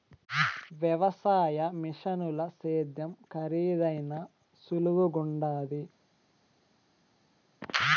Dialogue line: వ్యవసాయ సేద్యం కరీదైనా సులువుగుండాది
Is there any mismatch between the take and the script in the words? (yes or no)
yes